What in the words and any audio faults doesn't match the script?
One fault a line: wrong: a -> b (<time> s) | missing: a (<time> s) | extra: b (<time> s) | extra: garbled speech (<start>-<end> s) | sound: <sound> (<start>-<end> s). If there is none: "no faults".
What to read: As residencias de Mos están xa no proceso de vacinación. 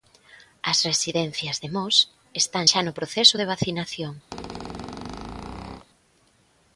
sound: squeak (4.3-5.9 s)